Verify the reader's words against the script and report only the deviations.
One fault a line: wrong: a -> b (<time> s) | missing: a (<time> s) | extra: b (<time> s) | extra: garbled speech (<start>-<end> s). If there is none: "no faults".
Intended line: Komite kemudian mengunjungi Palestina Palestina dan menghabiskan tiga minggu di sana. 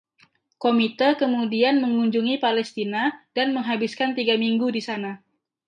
missing: Palestina (3.3 s)